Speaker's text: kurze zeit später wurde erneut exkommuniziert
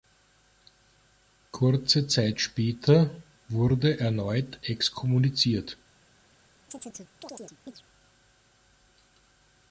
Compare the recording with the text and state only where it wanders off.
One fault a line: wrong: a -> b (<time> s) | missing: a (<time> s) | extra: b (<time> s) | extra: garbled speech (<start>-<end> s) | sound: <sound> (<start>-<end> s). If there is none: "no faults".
sound: chirp (6.7-7.8 s)